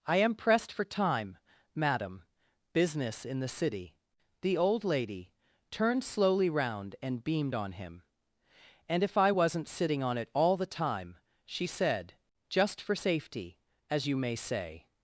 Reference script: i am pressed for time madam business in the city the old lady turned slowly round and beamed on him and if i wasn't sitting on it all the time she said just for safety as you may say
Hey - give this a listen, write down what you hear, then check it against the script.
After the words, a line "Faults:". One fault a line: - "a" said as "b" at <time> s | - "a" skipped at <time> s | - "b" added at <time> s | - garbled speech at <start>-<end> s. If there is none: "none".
i am pressed for time madam business in the city the old lady turned slowly round and beamed on him and if i wasn't sitting on it all the time she said just for safety as you may say
Faults:
none